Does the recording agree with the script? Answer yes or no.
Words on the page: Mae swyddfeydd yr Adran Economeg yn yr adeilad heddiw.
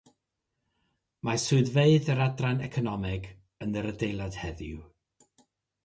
yes